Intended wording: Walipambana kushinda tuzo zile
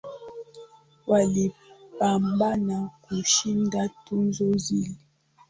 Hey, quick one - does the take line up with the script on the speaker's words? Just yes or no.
yes